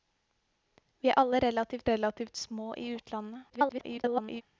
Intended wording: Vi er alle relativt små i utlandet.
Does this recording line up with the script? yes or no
no